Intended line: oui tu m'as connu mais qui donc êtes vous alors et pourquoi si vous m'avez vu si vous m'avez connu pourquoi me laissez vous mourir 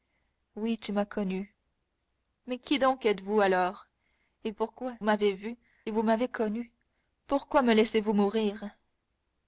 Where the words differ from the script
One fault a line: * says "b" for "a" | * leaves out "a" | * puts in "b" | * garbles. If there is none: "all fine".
* leaves out "si vous"
* leaves out "si"